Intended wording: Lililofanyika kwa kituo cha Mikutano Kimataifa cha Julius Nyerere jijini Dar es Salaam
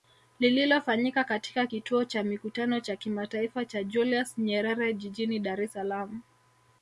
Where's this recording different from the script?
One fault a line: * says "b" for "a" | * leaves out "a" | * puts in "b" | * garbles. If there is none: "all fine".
* says "katika" for "kwa"
* puts in "cha"